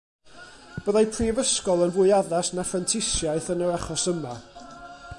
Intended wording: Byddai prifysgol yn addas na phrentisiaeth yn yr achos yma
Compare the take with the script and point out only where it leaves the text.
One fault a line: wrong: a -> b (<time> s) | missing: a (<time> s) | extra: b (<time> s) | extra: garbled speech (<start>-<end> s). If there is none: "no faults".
extra: fwy (2.0 s)